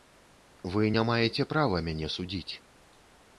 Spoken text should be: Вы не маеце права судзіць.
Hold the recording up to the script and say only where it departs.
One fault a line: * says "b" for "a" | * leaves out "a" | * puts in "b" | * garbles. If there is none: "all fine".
* puts in "мяне"